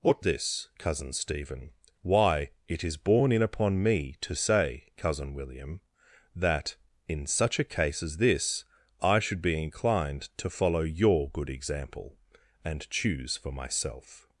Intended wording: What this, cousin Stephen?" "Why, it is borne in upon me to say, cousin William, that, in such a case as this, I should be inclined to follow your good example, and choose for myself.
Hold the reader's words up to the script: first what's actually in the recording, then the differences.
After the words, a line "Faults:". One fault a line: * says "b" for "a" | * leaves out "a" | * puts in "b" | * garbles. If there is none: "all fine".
What this, cousin Stephen?" "Why, it is borne in upon me to say, cousin William, that, in such a case as this, I should be inclined to follow your good example, and choose for myself.
Faults:
all fine